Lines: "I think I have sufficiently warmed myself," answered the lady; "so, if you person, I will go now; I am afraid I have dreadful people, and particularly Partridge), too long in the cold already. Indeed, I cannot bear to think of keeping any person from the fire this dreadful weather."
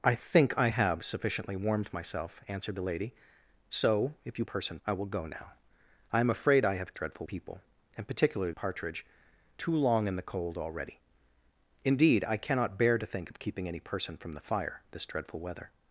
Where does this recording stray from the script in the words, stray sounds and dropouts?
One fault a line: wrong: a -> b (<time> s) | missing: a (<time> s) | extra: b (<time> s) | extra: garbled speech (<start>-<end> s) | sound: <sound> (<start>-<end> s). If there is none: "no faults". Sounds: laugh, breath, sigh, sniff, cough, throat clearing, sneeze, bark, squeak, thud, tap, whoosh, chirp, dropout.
no faults